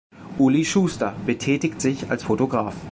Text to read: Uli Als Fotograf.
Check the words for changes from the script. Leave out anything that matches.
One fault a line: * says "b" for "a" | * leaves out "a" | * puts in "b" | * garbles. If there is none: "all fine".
* puts in "Schuster betätigt sich"